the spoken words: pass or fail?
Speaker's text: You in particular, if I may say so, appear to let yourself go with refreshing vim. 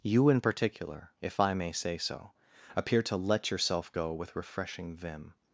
pass